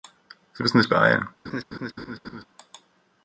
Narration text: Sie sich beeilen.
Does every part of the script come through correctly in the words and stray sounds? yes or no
no